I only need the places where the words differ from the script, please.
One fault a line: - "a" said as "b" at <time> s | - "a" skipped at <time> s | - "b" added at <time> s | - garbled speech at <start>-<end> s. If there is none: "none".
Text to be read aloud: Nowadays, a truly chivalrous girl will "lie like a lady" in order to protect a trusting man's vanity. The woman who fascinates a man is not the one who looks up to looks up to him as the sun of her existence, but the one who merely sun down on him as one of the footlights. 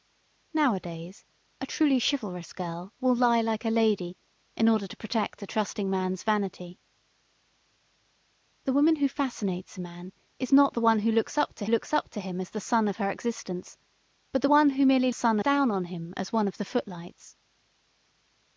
none